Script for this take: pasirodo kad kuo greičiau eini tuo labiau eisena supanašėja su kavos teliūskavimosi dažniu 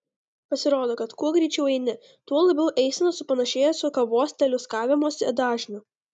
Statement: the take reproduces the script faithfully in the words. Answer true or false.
true